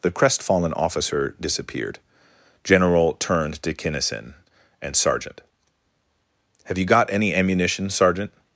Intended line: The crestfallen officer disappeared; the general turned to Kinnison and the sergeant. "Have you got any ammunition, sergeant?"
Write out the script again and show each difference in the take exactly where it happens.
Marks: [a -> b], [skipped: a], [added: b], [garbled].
The crestfallen officer disappeared; [skipped: the] general turned to Kinnison and [skipped: the] sergeant. "Have you got any ammunition, sergeant?"